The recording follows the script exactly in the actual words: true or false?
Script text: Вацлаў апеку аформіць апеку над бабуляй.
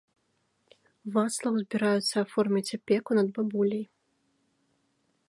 false